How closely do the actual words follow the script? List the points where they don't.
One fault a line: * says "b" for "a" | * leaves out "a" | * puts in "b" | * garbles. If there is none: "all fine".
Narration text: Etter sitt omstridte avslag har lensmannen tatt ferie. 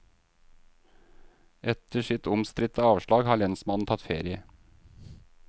all fine